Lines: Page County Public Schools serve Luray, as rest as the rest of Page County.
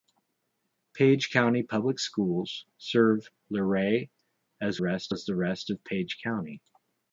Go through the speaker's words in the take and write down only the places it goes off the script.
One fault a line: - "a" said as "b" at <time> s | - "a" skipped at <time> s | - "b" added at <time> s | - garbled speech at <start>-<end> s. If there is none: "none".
none